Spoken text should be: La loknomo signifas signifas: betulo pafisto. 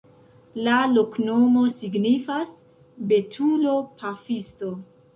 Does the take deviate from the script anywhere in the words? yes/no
yes